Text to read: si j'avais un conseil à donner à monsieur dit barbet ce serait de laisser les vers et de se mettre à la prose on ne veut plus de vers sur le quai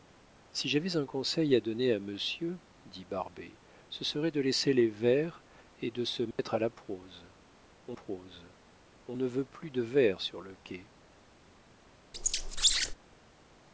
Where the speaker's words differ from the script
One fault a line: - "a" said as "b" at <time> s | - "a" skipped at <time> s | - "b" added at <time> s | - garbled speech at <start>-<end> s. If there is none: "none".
- "prose on" added at 7.9 s